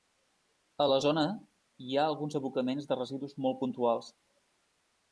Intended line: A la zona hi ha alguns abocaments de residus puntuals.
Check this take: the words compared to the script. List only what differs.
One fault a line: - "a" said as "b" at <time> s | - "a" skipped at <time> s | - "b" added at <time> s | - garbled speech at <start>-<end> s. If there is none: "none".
- "molt" added at 3.5 s